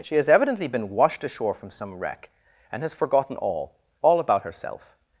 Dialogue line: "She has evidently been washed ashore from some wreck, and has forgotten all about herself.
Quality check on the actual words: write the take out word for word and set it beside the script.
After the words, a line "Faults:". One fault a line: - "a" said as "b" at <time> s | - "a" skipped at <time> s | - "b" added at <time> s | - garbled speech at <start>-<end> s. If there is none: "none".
"She has evidently been washed ashore from some wreck, and has forgotten all all about herself.
Faults:
- "all" added at 4.0 s